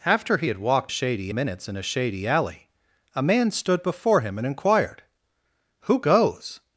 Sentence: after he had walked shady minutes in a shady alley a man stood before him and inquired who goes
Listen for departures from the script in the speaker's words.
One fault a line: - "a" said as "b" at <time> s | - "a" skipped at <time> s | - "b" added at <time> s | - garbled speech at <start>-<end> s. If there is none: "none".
none